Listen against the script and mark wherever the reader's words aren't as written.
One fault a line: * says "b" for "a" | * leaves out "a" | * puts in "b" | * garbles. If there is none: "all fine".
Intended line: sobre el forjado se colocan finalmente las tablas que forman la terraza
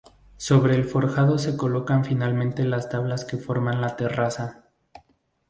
all fine